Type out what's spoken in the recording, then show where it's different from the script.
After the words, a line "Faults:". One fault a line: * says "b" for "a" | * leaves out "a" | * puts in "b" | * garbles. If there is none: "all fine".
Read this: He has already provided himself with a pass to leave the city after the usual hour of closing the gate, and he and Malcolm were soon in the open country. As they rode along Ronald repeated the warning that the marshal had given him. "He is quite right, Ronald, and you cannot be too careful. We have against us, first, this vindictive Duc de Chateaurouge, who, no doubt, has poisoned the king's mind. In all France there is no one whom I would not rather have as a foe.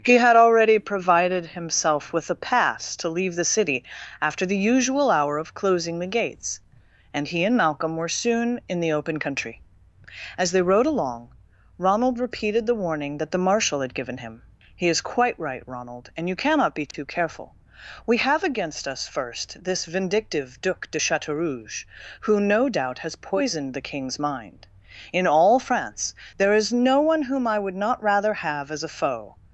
He had already provided himself with a pass to leave the city after the usual hour of closing the gates, and he and Malcolm were soon in the open country. As they rode along Ronald repeated the warning that the marshal had given him. "He is quite right, Ronald, and you cannot be too careful. We have against us, first, this vindictive Duc de Chateaurouge, who, no doubt, has poisoned the king's mind. In all France there is no one whom I would not rather have as a foe.
Faults:
* says "had" for "has"
* says "gates" for "gate"